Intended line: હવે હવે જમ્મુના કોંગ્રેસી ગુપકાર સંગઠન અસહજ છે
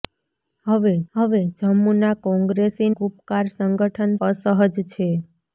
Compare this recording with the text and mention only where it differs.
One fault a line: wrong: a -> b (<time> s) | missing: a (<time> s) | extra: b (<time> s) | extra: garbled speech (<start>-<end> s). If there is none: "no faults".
no faults